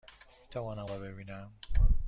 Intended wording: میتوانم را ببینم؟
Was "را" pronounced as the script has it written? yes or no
yes